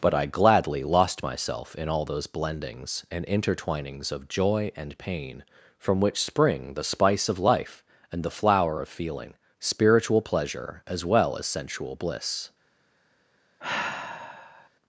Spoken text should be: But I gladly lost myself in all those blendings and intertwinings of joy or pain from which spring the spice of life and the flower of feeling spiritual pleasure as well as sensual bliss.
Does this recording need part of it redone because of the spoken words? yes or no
yes